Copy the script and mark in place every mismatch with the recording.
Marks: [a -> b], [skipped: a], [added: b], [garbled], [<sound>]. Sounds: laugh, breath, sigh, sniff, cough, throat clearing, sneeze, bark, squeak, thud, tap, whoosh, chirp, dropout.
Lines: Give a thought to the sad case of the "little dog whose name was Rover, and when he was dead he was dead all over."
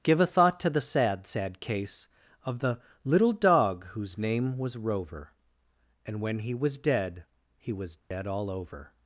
Give a thought to the sad [added: sad] case of the "little dog whose name was Rover, and when he was dead he was dead [dropout] all over."